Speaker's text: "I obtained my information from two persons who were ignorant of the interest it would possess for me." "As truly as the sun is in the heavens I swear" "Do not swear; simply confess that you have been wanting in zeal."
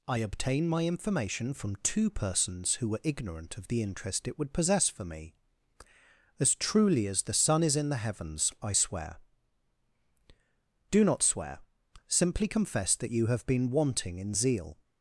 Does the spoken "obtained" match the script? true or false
false